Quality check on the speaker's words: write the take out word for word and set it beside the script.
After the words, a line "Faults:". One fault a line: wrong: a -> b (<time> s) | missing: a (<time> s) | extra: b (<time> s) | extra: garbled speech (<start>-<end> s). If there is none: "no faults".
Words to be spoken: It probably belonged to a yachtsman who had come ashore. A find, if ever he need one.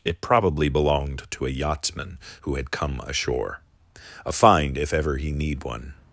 It probably belonged to a yachtsman who had come ashore. A find, if ever he need one.
Faults:
no faults